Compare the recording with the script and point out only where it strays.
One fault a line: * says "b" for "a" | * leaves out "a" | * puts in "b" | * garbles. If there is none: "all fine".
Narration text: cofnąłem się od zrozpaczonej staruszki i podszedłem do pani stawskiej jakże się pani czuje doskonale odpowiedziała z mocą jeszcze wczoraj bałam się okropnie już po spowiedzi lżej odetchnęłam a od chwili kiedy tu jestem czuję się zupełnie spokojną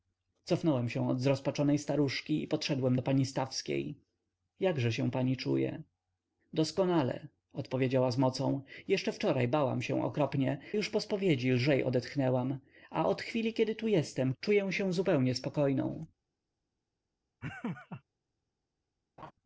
all fine